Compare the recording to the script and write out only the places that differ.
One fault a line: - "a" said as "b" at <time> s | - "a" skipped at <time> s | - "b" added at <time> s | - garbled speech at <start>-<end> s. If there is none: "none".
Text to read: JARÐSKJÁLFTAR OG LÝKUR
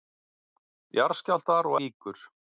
none